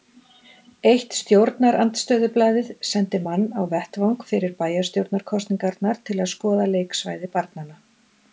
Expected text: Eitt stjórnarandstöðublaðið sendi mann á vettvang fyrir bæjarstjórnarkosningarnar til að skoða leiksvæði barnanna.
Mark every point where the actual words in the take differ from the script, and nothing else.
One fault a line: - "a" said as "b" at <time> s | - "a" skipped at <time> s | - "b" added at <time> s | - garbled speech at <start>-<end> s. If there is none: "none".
none